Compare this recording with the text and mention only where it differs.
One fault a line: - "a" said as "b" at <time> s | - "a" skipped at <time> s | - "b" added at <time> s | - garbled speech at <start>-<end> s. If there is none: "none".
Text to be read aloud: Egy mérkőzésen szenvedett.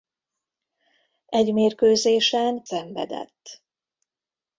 none